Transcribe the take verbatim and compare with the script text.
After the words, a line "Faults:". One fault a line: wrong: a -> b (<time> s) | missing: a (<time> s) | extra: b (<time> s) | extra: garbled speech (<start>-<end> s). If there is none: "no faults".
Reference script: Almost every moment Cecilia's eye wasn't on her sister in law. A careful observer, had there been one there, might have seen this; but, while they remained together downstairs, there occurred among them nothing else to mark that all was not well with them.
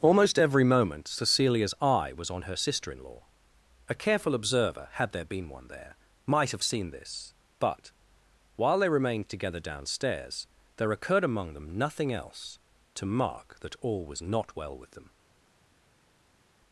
Almost every moment Cecilia's eye was on her sister in law. A careful observer, had there been one there, might have seen this; but, while they remained together downstairs, there occurred among them nothing else to mark that all was not well with them.
Faults:
wrong: wasn't -> was (2.2 s)